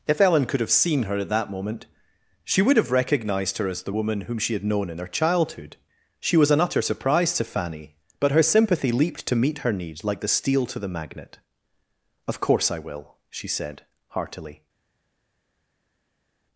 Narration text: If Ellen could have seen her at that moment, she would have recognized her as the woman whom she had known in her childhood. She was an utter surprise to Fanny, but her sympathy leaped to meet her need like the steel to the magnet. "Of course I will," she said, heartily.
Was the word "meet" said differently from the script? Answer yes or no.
no